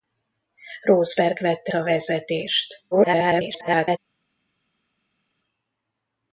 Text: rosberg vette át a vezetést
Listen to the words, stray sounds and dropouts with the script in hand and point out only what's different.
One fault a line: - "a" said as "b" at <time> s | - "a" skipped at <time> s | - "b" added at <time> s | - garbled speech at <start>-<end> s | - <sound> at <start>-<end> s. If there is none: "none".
- "át" skipped at 1.7 s
- garbled speech at 2.9-4.0 s